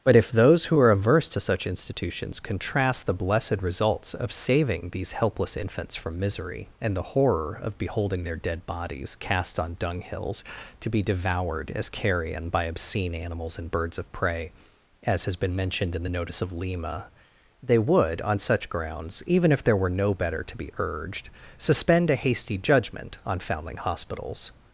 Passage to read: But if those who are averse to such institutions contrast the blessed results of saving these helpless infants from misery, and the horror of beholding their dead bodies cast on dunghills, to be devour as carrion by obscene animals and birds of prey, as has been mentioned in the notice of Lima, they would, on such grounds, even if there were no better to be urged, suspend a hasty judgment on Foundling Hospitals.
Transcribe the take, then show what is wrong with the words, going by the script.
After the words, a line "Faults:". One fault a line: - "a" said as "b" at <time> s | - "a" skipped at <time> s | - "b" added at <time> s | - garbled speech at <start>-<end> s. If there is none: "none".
But if those who are averse to such institutions contrast the blessed results of saving these helpless infants from misery, and the horror of beholding their dead bodies cast on dunghills, to be devoured as carrion by obscene animals and birds of prey, as has been mentioned in the notice of Lima, they would, on such grounds, even if there were no better to be urged, suspend a hasty judgment on Foundling Hospitals.
Faults:
- "devour" said as "devoured" at 11.0 s